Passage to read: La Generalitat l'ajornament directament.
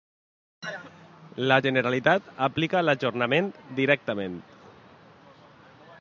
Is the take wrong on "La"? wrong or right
right